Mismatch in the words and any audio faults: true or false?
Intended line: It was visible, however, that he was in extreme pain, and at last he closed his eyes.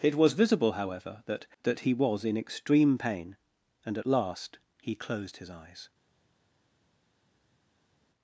true